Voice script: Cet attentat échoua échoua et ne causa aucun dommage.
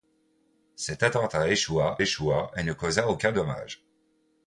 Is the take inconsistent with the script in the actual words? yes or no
no